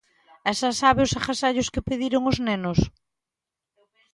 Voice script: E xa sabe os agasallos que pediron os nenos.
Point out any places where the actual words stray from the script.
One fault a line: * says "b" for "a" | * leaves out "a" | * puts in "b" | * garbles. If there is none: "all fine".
all fine